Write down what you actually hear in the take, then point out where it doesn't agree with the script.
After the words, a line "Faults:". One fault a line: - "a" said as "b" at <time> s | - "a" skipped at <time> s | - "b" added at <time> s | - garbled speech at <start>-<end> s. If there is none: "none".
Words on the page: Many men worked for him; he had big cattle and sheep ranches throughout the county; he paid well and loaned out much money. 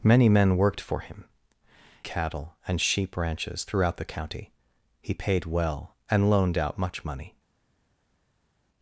Many men worked for him; cattle and sheep ranches throughout the county; he paid well and loaned out much money.
Faults:
- "he had big" skipped at 1.2 s